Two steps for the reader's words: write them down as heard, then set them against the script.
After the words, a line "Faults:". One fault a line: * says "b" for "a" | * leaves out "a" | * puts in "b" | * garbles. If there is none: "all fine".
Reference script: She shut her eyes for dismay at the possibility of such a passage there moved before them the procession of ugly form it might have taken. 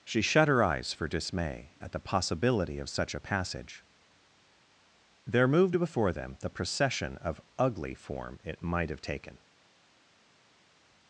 She shut her eyes for dismay at the possibility of such a passage there moved before them the procession of ugly form it might have taken.
Faults:
all fine